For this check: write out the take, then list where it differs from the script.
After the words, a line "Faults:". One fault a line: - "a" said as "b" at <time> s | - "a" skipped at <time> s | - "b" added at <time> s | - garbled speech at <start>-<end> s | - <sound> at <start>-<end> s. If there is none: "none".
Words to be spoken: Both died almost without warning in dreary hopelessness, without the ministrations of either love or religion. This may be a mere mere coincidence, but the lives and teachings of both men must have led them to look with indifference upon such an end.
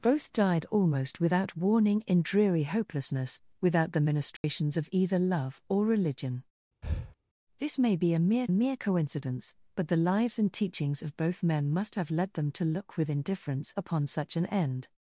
Both died almost without warning in dreary hopelessness, without the ministrations of either love or religion. This may be a mere mere coincidence, but the lives and teachings of both men must have led them to look with indifference upon such an end.
Faults:
- dropout at 4.4-4.4 s
- breath at 6.8-7.2 s